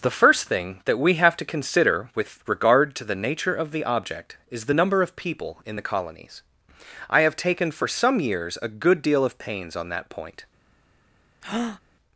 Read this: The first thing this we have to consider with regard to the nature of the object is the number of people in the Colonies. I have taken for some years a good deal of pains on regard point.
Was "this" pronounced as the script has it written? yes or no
no